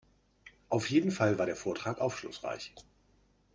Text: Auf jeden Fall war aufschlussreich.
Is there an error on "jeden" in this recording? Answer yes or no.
no